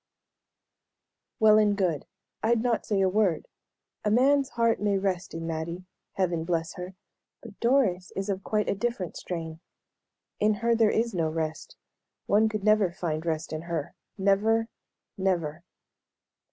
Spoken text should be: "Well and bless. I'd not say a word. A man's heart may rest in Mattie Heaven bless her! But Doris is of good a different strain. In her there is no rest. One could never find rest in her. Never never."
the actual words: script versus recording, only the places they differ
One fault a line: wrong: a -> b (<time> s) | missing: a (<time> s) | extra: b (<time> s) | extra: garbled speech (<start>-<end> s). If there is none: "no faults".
wrong: bless -> good (1.8 s)
wrong: good -> quite (8.4 s)